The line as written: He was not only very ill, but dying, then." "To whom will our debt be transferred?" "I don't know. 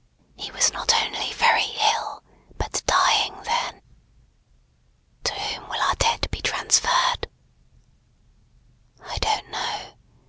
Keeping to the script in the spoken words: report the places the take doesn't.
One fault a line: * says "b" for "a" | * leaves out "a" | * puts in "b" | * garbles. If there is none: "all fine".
all fine